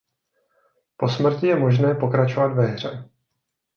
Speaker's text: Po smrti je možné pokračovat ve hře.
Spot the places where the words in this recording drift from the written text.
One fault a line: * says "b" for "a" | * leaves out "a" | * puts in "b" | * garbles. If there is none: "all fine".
all fine